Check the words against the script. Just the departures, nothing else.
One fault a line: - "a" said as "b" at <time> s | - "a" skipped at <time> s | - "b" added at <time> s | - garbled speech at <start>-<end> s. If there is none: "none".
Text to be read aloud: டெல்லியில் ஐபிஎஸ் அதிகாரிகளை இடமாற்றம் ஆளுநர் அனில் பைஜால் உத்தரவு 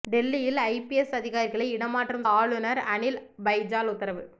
none